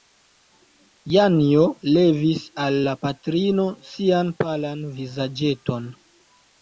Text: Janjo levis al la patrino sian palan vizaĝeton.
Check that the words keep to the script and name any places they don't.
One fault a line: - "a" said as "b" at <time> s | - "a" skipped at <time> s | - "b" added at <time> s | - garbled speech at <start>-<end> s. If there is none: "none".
none